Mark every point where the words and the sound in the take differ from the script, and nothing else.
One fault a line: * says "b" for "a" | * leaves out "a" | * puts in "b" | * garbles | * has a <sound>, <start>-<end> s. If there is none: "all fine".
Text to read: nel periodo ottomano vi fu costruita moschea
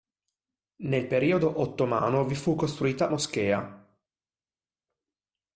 all fine